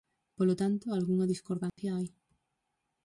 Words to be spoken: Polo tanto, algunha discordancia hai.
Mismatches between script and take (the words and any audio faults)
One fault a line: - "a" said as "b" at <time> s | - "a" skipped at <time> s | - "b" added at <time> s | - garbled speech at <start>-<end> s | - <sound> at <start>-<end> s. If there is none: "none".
- dropout at 1.7-1.8 s